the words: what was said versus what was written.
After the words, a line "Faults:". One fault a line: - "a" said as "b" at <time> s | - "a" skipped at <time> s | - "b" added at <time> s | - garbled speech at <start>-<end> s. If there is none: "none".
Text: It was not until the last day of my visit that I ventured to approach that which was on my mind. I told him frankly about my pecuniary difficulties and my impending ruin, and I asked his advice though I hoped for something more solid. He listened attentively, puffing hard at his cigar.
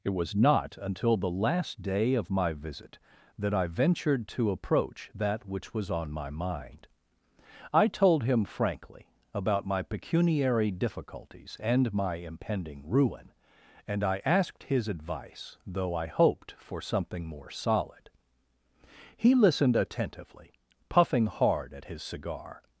It was not until the last day of my visit that I ventured to approach that which was on my mind. I told him frankly about my pecuniary difficulties and my impending ruin, and I asked his advice though I hoped for something more solid. He listened attentively, puffing hard at his cigar.
Faults:
none